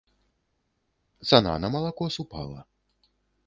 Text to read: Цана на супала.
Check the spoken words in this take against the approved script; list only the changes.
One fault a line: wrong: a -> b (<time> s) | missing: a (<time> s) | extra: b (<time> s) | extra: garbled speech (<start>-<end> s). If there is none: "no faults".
extra: малако (1.7 s)